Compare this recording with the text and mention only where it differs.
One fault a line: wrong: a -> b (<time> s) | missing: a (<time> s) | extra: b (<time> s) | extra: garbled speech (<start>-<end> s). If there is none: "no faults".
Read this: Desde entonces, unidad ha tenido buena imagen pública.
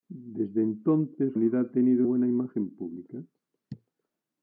no faults